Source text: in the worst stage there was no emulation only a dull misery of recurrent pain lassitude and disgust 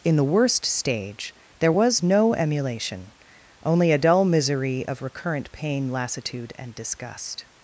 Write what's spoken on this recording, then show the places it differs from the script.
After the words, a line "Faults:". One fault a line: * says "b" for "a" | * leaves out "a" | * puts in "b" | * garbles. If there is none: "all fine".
in the worst stage there was no emulation only a dull misery of recurrent pain lassitude and disgust
Faults:
all fine